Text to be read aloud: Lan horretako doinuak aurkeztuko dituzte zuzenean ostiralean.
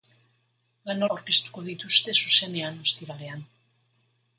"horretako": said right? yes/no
no